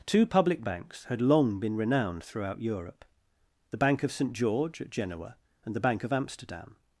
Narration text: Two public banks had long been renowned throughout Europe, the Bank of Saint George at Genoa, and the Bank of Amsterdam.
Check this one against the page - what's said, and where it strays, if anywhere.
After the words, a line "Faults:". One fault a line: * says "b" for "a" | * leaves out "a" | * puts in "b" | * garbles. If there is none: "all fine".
Two public banks had long been renowned throughout Europe, the Bank of Saint George at Genoa, and the Bank of Amsterdam.
Faults:
all fine